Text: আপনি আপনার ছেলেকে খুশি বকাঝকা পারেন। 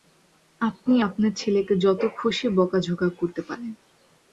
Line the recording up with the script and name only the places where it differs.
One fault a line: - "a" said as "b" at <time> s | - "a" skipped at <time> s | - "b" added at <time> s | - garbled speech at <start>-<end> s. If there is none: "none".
- "যত" added at 1.8 s
- "করতে" added at 3.2 s